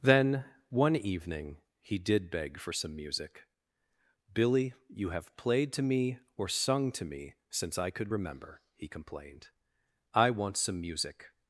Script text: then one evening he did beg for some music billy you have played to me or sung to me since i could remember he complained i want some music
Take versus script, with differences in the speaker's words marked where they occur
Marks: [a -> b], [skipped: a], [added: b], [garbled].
then one evening he did beg for some music billy you have played to me or sung to me since i could remember he complained i want some music